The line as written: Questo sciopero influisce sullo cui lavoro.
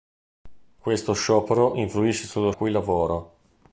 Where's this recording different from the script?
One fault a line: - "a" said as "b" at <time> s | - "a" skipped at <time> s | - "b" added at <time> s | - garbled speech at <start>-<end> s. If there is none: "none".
none